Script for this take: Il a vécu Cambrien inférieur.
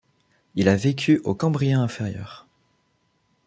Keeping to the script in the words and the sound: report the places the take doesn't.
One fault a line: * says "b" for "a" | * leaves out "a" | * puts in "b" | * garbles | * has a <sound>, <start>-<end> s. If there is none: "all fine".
* puts in "au"